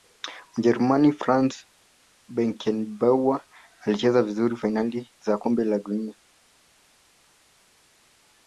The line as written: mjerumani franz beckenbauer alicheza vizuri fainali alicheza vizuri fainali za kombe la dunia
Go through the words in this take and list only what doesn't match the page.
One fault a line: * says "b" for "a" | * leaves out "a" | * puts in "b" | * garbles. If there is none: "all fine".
* leaves out "alicheza vizuri fainali"